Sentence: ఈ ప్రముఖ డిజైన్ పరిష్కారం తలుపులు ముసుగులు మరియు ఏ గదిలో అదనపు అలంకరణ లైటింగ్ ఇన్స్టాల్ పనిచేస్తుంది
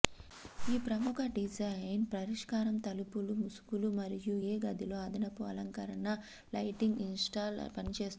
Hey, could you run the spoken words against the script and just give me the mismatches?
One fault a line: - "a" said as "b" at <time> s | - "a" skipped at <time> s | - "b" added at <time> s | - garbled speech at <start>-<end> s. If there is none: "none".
none